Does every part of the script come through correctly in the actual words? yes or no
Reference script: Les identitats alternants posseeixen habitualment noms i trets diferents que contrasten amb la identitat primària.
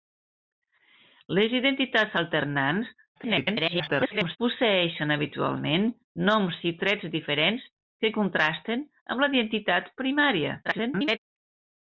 no